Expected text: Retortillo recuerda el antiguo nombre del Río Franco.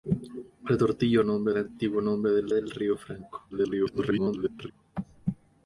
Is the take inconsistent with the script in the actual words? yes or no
yes